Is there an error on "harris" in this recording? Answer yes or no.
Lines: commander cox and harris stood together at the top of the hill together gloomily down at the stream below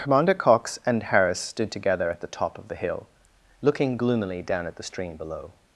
no